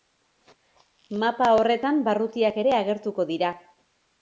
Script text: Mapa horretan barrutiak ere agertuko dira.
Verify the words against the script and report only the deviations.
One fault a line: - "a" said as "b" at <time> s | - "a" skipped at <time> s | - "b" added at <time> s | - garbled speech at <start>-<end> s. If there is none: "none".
none